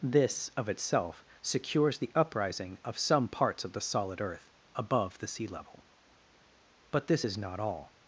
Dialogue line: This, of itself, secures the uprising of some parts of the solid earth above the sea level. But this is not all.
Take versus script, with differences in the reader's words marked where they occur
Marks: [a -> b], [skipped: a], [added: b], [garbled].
This, of itself, secures the uprising of some parts of the solid earth above the sea level. But this is not all.